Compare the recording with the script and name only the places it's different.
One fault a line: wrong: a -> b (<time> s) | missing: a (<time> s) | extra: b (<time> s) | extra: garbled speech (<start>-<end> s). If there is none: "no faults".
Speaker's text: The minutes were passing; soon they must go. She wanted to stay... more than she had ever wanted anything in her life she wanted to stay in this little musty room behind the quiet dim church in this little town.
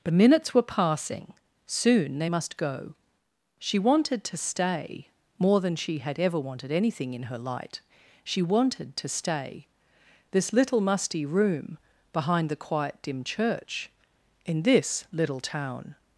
wrong: life -> light (7.4 s)
missing: in (9.7 s)